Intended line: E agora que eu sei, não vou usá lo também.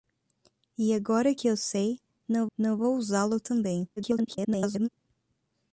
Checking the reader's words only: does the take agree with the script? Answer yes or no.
no